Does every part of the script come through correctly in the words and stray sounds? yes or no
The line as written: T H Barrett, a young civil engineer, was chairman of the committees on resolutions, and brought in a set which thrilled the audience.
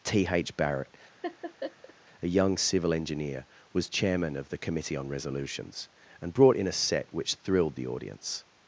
no